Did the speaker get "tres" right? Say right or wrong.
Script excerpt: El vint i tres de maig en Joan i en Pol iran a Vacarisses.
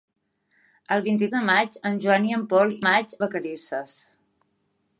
wrong